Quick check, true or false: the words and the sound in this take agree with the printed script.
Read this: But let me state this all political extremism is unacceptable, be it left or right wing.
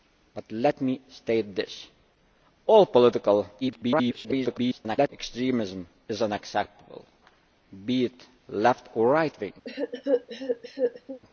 false